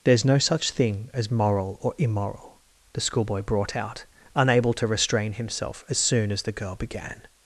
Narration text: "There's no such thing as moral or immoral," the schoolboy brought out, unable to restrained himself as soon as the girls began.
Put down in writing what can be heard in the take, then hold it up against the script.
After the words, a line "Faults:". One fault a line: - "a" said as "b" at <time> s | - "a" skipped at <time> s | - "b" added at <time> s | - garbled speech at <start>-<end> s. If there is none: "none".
"There's no such thing as moral or immoral," the schoolboy brought out, unable to restrain himself as soon as the girl began.
Faults:
- "restrained" said as "restrain" at 4.9 s
- "girls" said as "girl" at 6.5 s